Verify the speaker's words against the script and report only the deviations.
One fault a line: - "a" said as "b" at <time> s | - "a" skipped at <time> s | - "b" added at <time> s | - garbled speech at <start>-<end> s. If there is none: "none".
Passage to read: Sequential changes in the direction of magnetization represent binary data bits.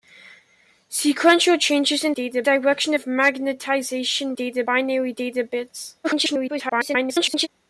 - "the" said as "data" at 2.1 s
- "represent" said as "data" at 4.3 s
- garbled speech at 6.0-7.5 s